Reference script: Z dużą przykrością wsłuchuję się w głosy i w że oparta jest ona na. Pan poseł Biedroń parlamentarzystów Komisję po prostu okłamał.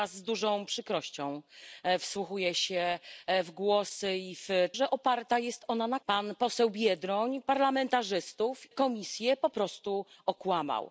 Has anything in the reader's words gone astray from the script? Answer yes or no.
no